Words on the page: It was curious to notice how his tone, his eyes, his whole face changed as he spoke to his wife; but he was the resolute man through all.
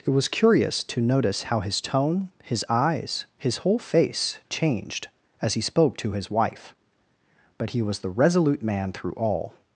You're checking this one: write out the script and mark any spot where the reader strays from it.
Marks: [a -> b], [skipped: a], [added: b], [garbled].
It was curious to notice how his tone, his eyes, his whole face changed as he spoke to his wife; but he was the resolute man through all.